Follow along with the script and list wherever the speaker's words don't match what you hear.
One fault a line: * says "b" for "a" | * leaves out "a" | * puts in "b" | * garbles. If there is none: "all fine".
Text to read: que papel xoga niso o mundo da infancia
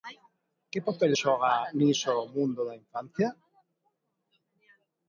all fine